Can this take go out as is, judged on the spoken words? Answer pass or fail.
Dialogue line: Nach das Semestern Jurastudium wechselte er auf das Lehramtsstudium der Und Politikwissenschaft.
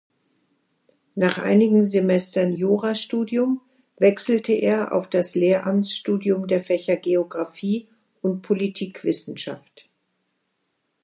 fail